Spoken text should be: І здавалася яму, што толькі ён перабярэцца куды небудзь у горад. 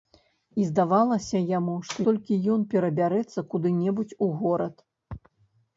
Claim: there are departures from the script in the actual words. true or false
false